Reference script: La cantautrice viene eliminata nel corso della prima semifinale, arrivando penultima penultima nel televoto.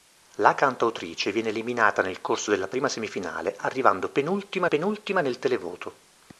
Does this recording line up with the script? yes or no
yes